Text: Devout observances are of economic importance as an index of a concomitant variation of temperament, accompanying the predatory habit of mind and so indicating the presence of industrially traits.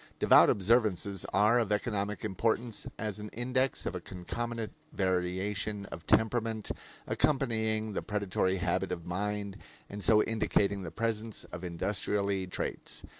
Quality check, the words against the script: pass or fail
pass